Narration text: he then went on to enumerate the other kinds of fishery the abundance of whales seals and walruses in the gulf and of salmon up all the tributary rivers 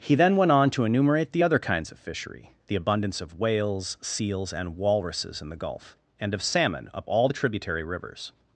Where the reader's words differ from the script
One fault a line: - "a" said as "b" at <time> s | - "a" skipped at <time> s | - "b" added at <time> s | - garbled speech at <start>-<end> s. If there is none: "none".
none